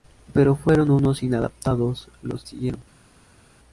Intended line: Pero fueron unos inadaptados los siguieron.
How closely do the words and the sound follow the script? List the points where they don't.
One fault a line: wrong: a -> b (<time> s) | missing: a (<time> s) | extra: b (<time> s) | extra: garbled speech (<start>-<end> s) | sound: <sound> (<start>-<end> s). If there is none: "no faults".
no faults